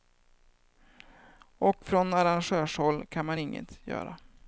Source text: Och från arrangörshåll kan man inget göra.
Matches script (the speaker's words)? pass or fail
pass